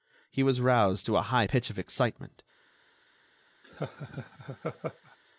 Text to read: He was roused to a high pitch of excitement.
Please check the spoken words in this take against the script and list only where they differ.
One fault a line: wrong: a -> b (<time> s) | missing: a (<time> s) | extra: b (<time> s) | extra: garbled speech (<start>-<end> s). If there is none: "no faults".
no faults